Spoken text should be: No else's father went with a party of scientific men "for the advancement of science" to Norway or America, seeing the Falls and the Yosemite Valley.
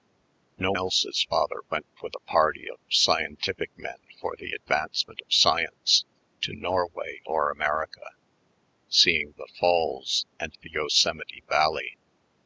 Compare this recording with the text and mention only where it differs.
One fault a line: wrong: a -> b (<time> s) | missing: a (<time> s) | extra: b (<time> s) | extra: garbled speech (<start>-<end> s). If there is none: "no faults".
no faults